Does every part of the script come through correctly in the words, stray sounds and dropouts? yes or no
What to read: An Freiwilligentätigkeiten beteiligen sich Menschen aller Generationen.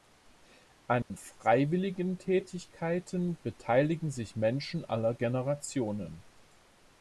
no